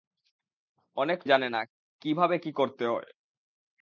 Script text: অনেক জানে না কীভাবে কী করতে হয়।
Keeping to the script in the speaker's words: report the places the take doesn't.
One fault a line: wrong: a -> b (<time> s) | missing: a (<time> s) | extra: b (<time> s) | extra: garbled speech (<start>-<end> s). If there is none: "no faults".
no faults